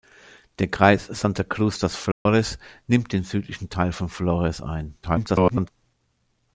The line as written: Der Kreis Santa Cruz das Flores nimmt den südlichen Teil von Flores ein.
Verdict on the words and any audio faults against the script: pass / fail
fail